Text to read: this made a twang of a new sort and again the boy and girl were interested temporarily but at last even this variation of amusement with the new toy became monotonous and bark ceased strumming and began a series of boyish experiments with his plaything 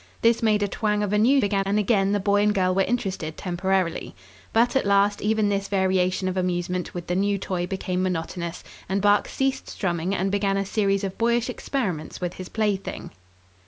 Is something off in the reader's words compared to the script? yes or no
yes